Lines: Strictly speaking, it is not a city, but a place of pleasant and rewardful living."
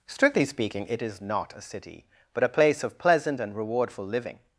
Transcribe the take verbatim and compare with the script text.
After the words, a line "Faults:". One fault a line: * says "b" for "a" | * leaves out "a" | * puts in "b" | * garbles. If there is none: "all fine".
Strictly speaking, it is not a city, but a place of pleasant and rewardful living."
Faults:
all fine